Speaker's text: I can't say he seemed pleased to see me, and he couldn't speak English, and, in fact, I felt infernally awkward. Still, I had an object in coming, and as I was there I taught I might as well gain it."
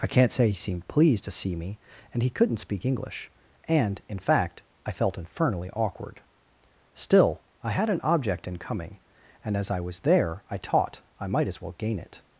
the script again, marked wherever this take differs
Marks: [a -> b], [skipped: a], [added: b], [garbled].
I can't say he seemed pleased to see me, and he couldn't speak English, and, in fact, I felt infernally awkward. Still, I had an object in coming, and as I was there I taught I might as well gain it."